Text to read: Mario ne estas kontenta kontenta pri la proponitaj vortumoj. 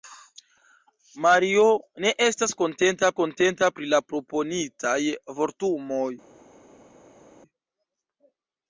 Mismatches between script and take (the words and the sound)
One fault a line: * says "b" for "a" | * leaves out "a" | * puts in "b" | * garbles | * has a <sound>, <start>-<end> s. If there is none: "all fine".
all fine